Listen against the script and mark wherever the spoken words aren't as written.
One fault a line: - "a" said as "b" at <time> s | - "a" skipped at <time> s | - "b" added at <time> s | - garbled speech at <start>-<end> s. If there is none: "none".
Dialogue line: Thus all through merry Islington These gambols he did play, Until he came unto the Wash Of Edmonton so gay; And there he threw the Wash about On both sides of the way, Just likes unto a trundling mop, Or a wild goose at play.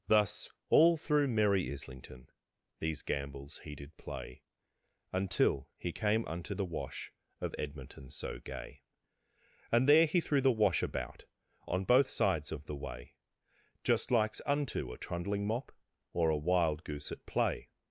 none